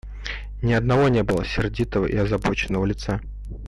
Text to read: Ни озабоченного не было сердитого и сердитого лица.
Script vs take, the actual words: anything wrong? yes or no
yes